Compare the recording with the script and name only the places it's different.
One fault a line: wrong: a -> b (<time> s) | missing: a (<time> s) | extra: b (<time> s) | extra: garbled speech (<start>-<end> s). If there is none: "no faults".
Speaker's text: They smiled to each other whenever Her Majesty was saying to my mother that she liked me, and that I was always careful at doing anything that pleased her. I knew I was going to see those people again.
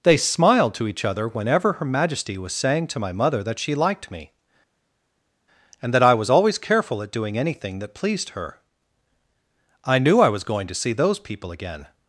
no faults